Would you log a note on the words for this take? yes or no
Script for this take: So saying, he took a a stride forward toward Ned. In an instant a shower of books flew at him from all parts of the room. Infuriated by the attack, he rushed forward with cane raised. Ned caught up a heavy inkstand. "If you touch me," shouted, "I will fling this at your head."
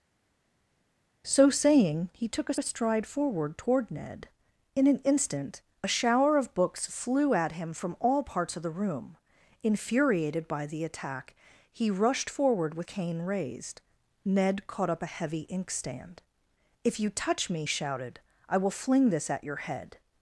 no